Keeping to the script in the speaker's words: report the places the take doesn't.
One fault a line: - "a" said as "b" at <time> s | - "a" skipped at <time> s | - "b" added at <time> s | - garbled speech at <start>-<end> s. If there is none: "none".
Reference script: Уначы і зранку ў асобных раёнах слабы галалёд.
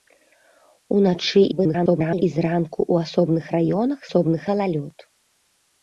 - garbled speech at 1.5-2.2 s
- "слабы" said as "асобных" at 4.1 s